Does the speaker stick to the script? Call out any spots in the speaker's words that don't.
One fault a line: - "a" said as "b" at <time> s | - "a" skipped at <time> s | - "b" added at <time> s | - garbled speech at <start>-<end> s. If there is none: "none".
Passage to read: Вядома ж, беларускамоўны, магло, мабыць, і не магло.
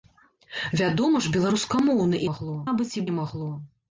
none